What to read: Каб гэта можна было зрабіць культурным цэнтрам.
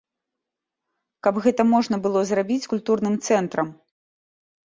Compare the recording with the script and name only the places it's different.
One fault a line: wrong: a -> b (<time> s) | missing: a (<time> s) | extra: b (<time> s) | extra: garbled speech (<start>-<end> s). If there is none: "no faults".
no faults